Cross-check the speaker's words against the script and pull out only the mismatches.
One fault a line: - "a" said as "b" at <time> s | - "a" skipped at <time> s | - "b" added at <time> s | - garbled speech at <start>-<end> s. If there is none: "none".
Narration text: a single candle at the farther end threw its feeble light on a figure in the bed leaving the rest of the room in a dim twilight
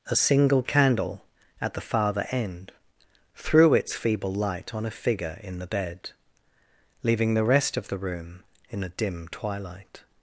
none